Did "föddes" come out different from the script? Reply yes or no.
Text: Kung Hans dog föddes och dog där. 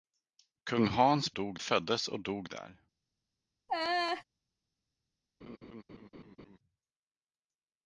no